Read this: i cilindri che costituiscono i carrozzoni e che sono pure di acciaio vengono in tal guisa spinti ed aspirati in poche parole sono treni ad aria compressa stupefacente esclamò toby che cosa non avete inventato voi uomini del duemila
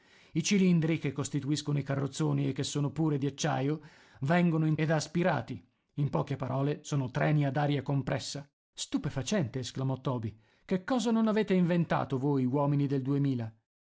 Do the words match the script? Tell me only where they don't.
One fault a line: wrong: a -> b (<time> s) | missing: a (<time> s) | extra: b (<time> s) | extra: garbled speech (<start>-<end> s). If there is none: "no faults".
missing: tal guisa spinti (4.8 s)